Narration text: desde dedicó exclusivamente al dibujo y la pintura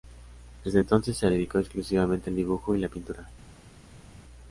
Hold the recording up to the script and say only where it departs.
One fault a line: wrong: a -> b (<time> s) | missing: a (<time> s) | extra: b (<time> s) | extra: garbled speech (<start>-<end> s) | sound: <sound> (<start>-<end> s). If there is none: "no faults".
extra: entonces se (0.8 s)